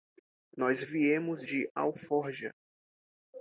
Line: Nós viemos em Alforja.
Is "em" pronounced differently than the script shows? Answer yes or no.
yes